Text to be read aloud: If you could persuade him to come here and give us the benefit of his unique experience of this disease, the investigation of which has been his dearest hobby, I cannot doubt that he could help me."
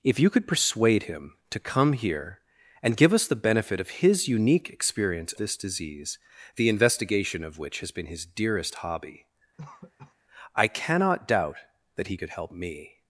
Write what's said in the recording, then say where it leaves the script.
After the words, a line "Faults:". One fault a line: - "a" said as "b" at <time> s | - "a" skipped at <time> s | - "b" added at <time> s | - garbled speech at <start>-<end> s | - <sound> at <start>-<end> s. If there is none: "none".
If you could persuade him to come here and give us the benefit of his unique experience this disease, the investigation of which has been his dearest hobby, I cannot doubt that he could help me."
Faults:
- "of" skipped at 5.3 s
- cough at 9.6-10.1 s